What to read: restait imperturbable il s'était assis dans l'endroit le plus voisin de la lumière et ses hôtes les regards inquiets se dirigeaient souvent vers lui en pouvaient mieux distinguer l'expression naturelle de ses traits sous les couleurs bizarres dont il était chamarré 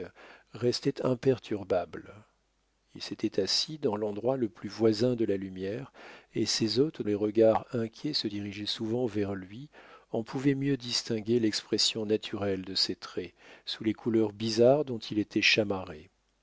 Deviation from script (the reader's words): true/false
false